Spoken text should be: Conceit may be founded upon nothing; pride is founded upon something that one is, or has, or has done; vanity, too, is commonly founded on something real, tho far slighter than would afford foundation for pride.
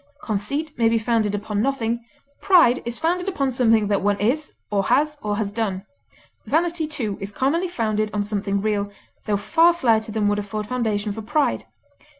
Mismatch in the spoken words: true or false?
false